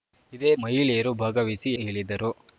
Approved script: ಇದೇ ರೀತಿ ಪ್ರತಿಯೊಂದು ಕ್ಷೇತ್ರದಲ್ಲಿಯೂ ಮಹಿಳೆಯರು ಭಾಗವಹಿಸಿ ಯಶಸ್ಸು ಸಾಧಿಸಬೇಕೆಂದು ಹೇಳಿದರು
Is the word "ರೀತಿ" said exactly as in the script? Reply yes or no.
no